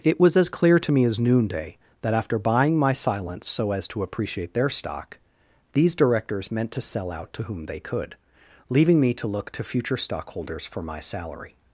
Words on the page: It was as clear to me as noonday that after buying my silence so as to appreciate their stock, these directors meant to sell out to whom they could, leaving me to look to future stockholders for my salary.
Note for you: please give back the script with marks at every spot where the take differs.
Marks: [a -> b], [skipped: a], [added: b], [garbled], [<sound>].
It was as clear to me as noonday that after buying my silence so as to appreciate their stock, these directors meant to sell out to whom they could, leaving me to look to future stockholders for my salary.